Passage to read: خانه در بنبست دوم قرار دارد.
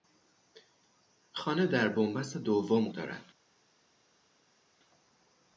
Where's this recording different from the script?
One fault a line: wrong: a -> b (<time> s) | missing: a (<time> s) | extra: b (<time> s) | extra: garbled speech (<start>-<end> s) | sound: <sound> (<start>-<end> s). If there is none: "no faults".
missing: قرار (2.9 s)